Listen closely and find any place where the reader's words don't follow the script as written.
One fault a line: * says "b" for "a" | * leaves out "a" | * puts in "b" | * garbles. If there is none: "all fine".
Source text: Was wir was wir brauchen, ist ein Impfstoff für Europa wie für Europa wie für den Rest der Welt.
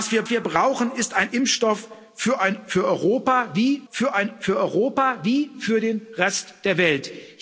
all fine